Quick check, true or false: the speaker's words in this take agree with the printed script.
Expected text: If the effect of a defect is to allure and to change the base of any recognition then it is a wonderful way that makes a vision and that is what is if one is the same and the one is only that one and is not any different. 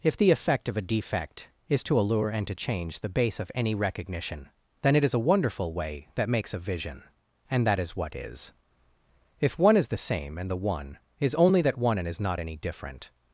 true